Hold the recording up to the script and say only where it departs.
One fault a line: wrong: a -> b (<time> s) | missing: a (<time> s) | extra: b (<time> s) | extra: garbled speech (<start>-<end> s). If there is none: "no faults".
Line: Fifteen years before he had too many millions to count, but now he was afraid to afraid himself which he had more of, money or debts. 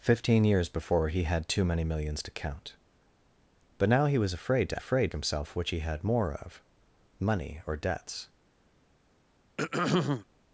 no faults